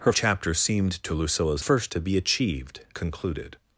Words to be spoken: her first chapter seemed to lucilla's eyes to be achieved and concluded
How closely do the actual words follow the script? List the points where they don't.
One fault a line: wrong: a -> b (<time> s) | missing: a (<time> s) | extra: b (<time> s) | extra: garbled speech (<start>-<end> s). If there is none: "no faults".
missing: first (0.1 s)
wrong: eyes -> first (1.6 s)
missing: and (2.8 s)